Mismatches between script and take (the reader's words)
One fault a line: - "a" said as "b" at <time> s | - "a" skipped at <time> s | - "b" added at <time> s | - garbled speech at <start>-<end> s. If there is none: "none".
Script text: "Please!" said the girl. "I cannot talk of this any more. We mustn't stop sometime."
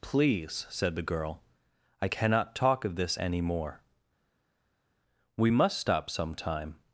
- "mustn't" said as "must" at 5.5 s